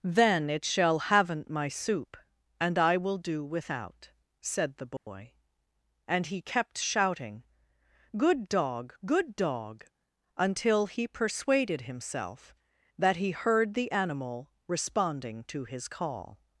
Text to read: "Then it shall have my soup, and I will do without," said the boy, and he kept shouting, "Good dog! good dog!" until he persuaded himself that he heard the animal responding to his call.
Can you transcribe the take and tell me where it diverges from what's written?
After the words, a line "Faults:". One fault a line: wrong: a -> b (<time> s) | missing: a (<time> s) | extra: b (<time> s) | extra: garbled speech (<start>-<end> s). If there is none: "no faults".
"Then it shall haven't my soup, and I will do without," said the boy, and he kept shouting, "Good dog! good dog!" until he persuaded himself that he heard the animal responding to his call.
Faults:
wrong: have -> haven't (1.0 s)